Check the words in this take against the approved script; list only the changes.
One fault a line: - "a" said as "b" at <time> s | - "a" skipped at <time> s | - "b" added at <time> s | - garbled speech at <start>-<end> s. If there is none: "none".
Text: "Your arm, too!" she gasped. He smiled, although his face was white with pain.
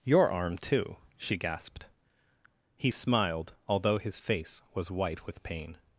none